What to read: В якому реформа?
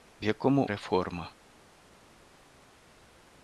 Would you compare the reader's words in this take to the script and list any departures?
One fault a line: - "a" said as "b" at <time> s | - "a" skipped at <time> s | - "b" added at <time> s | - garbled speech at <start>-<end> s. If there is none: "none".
none